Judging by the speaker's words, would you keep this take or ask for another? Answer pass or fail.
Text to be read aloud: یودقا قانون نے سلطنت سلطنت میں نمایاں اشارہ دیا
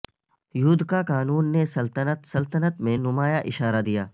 pass